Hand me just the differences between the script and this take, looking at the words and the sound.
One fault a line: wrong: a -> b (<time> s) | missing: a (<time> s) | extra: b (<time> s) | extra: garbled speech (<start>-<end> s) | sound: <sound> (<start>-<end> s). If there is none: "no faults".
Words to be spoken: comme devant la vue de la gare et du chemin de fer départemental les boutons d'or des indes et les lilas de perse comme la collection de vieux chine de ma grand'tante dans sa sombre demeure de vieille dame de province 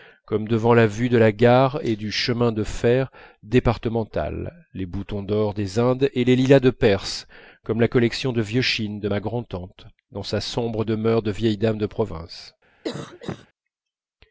sound: cough (12.8-13.5 s)